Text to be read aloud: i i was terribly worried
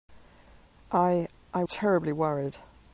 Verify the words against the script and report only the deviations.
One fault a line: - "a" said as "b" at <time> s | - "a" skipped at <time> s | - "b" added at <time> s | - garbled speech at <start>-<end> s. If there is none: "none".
- "was" skipped at 1.6 s